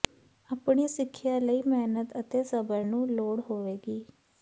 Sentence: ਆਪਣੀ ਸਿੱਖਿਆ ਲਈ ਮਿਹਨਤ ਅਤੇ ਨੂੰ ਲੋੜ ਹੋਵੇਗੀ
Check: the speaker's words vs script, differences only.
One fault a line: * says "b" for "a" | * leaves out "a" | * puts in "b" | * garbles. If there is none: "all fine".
* puts in "ਸਬਰ"